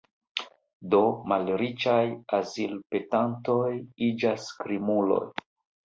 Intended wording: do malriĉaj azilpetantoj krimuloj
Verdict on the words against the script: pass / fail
fail